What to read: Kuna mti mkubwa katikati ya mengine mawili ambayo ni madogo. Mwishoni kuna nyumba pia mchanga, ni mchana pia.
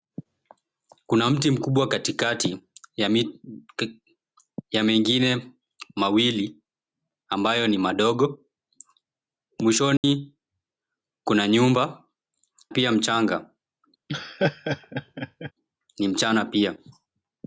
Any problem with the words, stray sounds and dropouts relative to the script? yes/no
yes